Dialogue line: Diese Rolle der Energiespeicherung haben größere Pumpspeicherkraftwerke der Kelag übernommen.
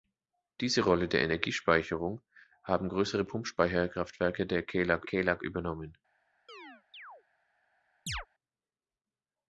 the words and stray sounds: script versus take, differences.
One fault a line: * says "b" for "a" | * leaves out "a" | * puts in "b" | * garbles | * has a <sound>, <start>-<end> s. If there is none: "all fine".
* puts in "Kelag"
* has a chirp, 6.5-7.2 s
* has a chirp, 8.1-8.3 s